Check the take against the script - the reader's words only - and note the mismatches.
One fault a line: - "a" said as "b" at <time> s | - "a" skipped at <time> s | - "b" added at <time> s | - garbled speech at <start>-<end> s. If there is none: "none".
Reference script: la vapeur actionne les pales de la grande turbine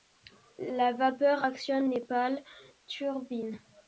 - "de la grande" skipped at 2.4 s